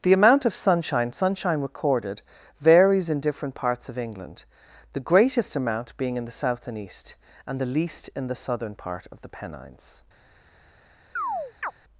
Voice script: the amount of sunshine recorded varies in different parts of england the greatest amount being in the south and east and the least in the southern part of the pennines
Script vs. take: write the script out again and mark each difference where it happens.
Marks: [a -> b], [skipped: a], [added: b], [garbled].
the amount of sunshine [added: sunshine] recorded varies in different parts of england the greatest amount being in the south and east and the least in the southern part of the pennines